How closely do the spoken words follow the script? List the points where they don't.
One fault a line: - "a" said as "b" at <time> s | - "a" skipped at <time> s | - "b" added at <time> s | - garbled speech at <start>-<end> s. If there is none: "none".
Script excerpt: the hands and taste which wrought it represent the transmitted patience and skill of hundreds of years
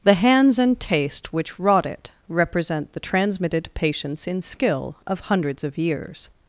- "and" said as "in" at 4.3 s